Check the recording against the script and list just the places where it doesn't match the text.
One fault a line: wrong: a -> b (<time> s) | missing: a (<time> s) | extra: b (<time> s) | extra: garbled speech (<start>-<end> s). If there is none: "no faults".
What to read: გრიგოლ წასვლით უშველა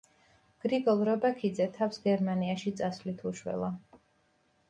extra: რობაქიძე თავს გერმანიაში (1.1 s)